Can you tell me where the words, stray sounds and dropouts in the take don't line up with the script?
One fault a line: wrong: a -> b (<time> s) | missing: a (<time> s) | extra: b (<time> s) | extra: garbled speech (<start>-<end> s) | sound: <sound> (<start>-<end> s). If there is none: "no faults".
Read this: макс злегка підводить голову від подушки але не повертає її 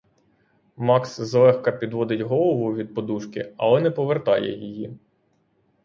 no faults